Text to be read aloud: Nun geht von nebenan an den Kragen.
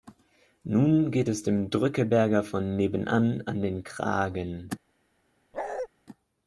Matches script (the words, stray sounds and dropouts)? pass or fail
fail